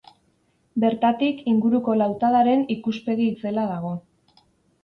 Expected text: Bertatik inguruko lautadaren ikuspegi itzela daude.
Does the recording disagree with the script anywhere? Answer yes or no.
yes